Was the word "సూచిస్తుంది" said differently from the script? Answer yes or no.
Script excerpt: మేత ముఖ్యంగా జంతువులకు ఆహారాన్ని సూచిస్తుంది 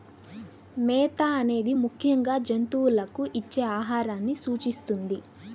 no